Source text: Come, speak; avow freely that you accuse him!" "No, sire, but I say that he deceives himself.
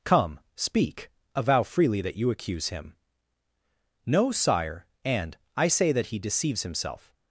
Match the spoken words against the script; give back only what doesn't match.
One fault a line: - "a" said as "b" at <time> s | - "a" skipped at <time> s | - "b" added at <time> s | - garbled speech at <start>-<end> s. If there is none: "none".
- "but" said as "and" at 5.0 s